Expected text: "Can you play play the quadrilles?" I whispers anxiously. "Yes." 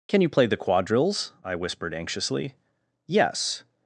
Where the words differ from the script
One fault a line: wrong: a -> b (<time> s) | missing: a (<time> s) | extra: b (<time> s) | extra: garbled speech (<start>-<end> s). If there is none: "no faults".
missing: play (0.5 s)
wrong: whispers -> whispered (1.5 s)